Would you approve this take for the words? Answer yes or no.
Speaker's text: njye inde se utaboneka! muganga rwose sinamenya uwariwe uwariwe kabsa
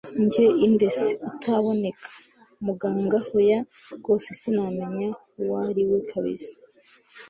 no